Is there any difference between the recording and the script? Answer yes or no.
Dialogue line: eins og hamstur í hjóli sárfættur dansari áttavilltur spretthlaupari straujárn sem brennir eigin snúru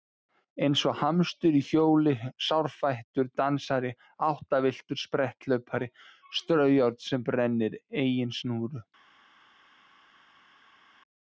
no